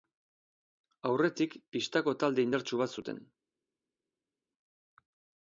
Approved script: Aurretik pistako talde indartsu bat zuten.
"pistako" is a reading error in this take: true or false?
false